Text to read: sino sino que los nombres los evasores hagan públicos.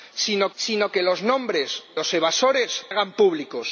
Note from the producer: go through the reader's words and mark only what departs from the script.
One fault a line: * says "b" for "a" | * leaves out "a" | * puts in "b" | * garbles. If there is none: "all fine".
all fine